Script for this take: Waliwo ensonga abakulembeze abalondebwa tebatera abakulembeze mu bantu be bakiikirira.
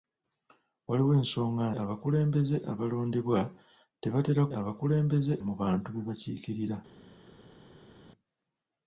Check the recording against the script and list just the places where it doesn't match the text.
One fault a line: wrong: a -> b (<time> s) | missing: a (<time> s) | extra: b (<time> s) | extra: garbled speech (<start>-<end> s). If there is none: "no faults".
no faults